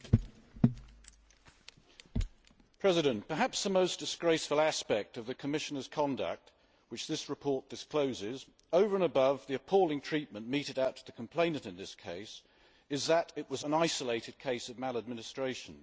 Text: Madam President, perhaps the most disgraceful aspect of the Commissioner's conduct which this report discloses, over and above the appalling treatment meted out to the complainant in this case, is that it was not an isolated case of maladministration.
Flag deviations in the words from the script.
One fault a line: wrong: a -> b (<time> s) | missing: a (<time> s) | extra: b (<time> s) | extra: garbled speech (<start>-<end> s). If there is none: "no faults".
missing: not (13.6 s)